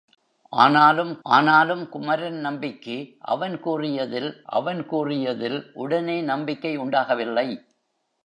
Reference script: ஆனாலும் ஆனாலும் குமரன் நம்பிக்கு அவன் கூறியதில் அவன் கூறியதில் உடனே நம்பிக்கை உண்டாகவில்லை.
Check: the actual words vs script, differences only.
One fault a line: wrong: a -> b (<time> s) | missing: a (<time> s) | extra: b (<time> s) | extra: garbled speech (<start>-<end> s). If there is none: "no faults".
no faults